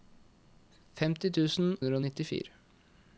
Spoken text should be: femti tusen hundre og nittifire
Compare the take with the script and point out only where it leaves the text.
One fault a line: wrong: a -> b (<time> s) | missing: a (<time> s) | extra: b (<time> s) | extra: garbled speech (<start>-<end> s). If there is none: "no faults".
no faults